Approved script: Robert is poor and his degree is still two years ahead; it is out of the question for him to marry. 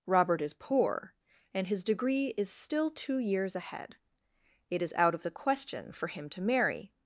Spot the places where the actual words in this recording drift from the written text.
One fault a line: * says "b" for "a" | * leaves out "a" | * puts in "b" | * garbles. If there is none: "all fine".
all fine